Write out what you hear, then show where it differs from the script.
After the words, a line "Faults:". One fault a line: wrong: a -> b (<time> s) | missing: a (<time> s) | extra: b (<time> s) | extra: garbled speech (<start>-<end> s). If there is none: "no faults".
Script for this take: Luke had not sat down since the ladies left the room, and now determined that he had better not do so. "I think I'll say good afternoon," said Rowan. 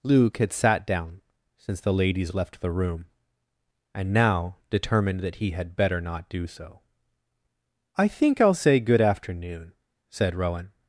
Luke had sat down since the ladies left the room, and now determined that he had better not do so. "I think I'll say good afternoon," said Rowan.
Faults:
missing: not (0.5 s)